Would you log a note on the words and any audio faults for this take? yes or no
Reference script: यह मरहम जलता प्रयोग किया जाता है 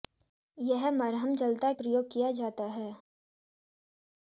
no